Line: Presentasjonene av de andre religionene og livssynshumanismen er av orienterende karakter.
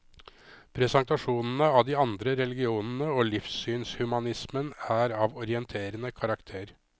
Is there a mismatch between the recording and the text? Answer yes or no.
no